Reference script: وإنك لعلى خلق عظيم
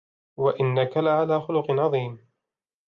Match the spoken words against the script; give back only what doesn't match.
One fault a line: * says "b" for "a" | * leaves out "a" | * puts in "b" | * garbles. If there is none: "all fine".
all fine